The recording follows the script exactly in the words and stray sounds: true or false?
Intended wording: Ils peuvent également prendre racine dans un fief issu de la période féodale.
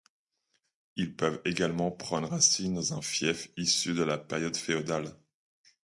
true